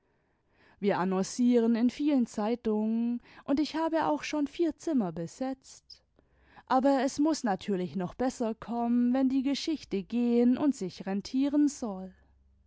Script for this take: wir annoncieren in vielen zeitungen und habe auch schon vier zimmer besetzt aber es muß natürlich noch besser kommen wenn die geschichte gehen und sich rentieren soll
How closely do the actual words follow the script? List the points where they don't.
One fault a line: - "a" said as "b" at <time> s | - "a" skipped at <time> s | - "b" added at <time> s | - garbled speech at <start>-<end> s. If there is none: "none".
- "ich" added at 3.6 s